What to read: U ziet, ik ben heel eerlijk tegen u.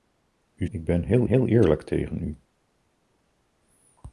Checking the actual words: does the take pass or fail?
fail